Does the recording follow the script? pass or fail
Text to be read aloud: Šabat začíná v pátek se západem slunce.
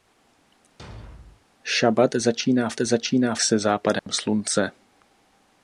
fail